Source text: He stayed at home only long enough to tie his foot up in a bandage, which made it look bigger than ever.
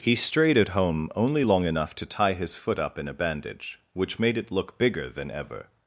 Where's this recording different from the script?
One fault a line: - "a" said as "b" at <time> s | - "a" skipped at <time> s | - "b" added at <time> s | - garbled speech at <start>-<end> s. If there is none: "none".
- "stayed" said as "strayed" at 0.1 s